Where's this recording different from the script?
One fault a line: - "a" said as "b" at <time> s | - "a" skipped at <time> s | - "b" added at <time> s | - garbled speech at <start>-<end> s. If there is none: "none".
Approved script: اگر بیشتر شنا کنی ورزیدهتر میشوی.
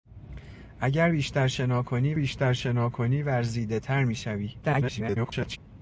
- "بیشتر شنا کنی" added at 2.2 s
- garbled speech at 4.6-5.6 s